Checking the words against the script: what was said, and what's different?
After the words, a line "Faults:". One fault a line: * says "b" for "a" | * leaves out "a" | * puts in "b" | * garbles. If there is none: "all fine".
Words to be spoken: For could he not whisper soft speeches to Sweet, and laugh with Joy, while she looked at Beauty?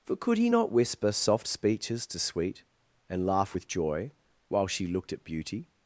For could he not whisper soft speeches to Sweet, and laugh with Joy, while she looked at Beauty?
Faults:
all fine